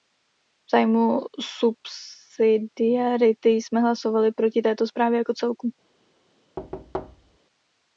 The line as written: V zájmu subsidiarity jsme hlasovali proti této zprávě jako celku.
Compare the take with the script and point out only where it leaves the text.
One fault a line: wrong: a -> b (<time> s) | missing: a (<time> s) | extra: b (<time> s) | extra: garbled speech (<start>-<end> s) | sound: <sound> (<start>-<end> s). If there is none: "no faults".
sound: thud (6.6-7.4 s)